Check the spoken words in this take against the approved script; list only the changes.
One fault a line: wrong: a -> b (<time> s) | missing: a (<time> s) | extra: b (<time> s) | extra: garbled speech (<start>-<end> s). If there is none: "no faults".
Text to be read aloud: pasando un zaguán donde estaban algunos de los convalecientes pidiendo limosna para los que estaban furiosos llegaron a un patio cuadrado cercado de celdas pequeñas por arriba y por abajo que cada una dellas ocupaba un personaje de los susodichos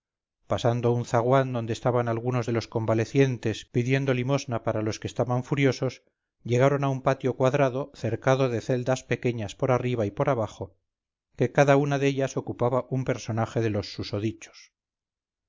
no faults